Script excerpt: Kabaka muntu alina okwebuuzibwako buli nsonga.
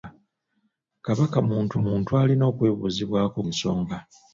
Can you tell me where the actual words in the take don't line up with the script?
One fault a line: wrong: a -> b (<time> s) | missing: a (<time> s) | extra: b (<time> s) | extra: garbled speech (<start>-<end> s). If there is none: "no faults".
extra: muntu (1.8 s)
missing: buli (3.4 s)